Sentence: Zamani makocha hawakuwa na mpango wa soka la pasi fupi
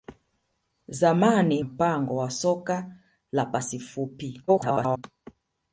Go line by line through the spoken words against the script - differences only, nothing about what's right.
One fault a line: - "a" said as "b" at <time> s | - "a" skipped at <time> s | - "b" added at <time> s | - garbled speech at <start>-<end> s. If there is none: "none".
- "makocha hawakuwa na" skipped at 1.6 s
- garbled speech at 4.5-5.0 s